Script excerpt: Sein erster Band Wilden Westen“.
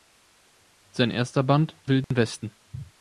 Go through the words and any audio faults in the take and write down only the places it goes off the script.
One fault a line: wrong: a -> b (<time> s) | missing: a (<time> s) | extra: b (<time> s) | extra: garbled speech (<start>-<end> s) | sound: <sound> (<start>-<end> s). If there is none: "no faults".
sound: dropout (2.0-2.1 s)